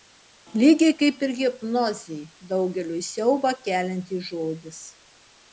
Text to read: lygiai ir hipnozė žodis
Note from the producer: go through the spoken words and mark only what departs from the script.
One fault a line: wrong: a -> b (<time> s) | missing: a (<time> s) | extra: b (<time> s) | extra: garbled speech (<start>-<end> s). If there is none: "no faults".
extra: kaip (1.0 s)
extra: daugeliui siaubą keliantis (2.5 s)